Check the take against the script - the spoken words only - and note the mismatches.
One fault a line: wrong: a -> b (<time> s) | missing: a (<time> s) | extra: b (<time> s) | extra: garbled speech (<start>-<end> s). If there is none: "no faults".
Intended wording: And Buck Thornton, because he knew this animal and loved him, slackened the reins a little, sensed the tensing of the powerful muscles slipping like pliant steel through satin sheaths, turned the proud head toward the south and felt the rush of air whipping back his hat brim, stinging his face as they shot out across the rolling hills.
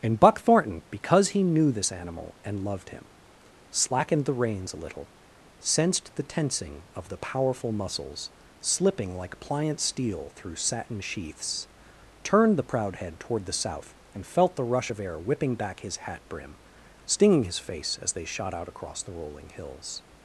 no faults